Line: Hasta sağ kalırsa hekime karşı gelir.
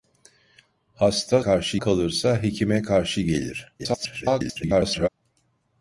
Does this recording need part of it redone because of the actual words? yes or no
yes